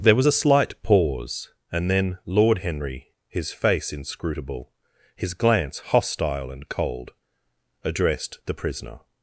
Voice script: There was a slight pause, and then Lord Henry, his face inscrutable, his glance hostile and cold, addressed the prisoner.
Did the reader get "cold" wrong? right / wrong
right